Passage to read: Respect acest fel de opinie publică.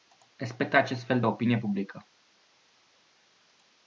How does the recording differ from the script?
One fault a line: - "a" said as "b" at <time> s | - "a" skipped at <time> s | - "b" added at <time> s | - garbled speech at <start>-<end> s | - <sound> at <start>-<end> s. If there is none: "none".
none